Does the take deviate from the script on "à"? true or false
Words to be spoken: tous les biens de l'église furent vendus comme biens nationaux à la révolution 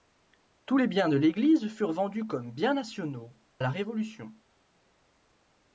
true